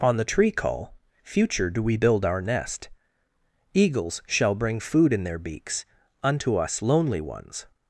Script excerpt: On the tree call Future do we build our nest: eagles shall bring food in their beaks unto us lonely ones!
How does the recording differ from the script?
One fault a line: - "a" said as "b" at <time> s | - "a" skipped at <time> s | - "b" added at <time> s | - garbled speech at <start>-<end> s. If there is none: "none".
none